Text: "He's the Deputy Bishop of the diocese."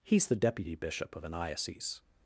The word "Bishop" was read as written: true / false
true